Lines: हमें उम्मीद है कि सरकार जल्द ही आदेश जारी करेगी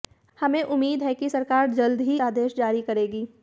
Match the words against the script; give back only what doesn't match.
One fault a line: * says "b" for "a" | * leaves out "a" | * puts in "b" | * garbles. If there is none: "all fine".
all fine